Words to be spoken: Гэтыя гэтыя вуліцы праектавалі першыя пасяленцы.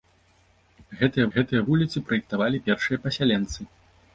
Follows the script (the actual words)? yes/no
yes